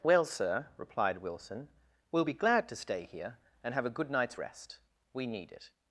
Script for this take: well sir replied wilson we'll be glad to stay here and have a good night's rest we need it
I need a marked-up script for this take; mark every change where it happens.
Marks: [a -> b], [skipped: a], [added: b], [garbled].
well sir replied wilson we'll be glad to stay here and have a good night's rest we need it